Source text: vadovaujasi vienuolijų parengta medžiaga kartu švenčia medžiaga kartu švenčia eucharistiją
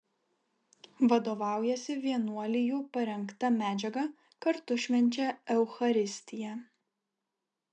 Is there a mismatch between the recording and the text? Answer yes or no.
yes